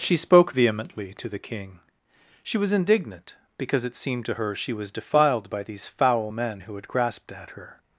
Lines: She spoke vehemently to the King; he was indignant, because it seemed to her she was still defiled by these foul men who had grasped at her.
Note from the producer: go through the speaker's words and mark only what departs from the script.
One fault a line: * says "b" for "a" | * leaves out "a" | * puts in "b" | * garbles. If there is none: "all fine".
* says "she" for "he"
* leaves out "still"